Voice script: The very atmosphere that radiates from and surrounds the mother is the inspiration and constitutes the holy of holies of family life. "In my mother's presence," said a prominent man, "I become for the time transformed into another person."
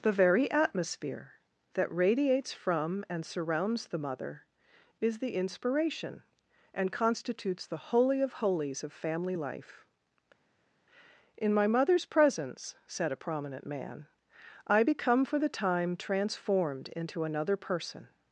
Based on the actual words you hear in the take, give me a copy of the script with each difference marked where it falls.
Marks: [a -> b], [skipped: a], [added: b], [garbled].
The very atmosphere that radiates from and surrounds the mother is the inspiration and constitutes the holy of holies of family life. "In my mother's presence," said a prominent man, "I become for the time transformed into another person."